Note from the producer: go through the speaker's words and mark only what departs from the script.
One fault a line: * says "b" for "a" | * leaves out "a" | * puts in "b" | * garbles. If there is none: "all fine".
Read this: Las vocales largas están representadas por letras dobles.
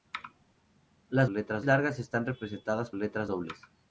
* says "letras" for "vocales"
* leaves out "por"